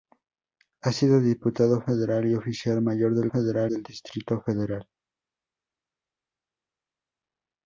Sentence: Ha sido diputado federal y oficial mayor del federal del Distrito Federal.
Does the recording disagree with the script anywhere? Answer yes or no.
no